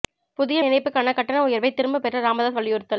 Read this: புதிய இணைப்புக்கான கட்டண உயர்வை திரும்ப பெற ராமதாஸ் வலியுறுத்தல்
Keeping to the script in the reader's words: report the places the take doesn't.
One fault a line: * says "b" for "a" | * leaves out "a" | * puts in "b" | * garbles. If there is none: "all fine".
all fine